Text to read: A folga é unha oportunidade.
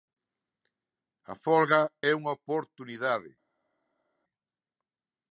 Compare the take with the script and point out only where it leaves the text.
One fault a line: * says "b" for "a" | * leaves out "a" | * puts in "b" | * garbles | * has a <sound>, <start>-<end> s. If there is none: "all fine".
all fine